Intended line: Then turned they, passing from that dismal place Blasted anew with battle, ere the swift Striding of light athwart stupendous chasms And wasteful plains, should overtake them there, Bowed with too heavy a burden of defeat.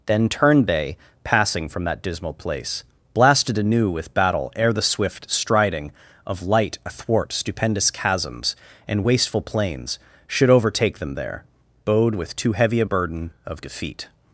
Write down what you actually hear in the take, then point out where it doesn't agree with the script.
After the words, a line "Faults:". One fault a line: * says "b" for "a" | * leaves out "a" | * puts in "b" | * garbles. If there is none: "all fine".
Then turned they, passing from that dismal place Blasted anew with battle, ere the swift Striding of light athwart stupendous chasms And wasteful plains, should overtake them there, Bowed with too heavy a burden of defeat.
Faults:
all fine